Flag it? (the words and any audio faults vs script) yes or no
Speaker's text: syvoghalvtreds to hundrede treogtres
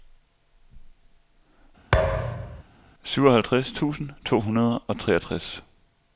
yes